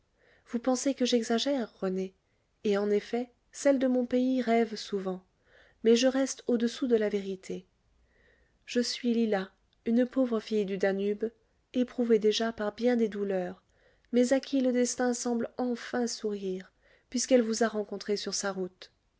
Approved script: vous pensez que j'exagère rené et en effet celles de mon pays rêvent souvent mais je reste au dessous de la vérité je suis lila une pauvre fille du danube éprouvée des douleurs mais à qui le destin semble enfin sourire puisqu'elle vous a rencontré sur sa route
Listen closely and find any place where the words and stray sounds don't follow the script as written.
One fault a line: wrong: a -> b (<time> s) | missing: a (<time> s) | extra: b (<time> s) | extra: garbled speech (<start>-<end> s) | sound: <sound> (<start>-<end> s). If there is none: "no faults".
extra: déjà par bien (12.2 s)